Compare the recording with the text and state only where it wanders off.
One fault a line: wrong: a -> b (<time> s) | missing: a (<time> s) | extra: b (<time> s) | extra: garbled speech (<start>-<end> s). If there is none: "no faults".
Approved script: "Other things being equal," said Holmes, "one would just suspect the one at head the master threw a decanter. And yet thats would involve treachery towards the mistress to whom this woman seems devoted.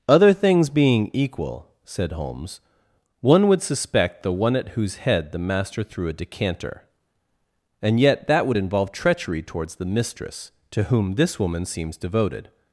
missing: just (3.6 s)
extra: whose (4.7 s)
wrong: thats -> that (8.3 s)